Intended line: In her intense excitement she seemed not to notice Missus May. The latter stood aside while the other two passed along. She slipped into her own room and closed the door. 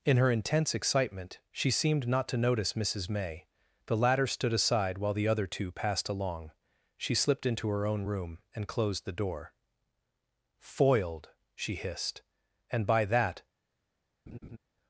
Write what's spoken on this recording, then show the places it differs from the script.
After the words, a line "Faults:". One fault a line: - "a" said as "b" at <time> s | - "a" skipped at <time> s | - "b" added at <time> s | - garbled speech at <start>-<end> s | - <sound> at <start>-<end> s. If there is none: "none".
In her intense excitement she seemed not to notice Missus May. The latter stood aside while the other two passed along. She slipped into her own room and closed the door. "Foiled," she hissed, "and by that
Faults:
- "Foiled she hissed and by that" added at 10.6 s
- laugh at 14.3-14.6 s